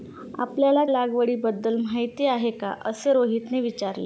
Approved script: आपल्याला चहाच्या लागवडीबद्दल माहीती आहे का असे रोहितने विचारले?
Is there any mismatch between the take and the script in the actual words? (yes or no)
yes